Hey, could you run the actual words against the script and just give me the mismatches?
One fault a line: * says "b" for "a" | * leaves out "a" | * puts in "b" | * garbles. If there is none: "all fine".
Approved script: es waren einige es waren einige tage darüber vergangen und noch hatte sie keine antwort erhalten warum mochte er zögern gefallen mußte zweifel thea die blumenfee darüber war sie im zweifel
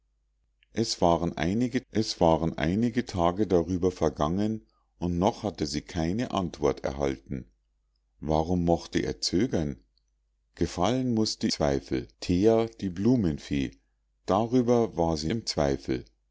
all fine